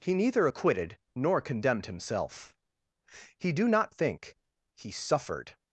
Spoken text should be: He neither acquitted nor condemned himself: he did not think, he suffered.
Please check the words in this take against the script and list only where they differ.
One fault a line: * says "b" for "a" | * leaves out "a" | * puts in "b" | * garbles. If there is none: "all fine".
* says "do" for "did"